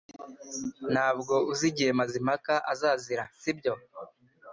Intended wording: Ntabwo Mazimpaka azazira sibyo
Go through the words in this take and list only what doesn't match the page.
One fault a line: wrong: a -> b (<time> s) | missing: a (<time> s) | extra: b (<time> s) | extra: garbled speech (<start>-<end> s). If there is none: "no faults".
extra: uzi igihe (1.5 s)